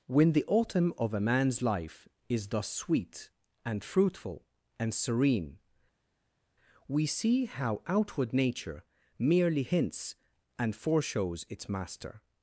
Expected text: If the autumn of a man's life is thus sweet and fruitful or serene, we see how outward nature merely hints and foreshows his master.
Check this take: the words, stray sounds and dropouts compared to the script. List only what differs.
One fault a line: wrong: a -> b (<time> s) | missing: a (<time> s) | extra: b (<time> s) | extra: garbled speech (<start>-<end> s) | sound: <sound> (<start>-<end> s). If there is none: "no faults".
wrong: If -> When (0.1 s)
wrong: or -> and (4.8 s)
wrong: his -> its (11.5 s)